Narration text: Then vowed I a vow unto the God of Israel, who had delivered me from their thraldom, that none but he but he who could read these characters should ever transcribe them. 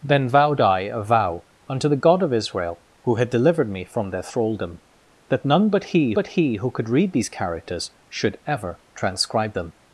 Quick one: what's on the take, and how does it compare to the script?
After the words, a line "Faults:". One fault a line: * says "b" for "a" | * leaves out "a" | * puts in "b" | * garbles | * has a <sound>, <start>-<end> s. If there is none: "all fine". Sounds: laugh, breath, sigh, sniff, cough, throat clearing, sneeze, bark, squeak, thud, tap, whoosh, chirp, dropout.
Then vowed I a vow unto the God of Israel, who had delivered me from their thraldom, that none but he but he who could read these characters should ever transcribe them.
Faults:
all fine